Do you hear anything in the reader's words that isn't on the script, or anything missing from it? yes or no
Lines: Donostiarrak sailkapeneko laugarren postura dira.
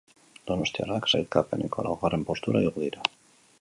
yes